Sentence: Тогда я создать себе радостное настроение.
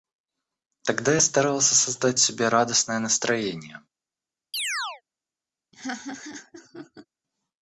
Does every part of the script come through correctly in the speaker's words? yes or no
no